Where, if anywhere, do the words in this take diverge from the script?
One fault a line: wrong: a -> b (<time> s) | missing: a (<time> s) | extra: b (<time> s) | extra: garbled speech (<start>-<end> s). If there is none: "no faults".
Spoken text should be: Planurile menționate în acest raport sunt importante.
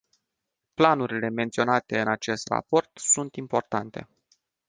no faults